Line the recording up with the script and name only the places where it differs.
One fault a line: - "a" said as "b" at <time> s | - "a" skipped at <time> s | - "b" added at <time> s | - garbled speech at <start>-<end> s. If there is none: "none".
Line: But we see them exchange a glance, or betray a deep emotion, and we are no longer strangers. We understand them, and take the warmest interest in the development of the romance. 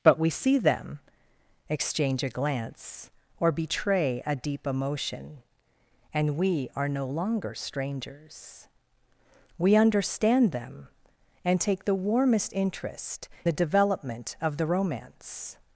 - "in" skipped at 13.3 s